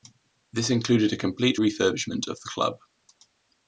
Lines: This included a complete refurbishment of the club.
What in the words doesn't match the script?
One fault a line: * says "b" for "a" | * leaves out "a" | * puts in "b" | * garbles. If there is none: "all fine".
all fine